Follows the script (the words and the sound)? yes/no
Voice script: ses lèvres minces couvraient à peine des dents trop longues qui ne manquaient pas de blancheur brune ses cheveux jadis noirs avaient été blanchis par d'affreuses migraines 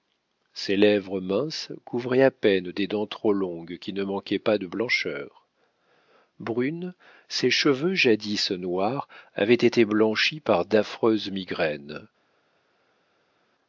yes